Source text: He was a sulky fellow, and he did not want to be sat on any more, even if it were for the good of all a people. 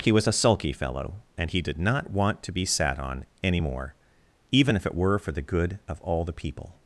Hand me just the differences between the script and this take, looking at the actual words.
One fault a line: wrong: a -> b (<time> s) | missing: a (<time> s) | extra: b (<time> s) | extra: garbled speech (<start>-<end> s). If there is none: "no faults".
wrong: a -> the (6.2 s)